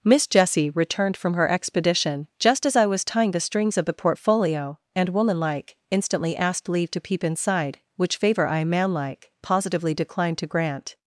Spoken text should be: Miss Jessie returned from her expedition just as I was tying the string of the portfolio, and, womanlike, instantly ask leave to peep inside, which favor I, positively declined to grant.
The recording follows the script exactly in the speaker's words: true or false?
false